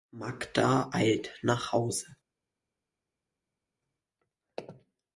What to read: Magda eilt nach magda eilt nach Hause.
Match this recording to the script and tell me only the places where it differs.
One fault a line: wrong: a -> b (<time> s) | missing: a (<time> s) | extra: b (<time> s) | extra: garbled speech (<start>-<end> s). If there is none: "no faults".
missing: magda eilt nach (1.7 s)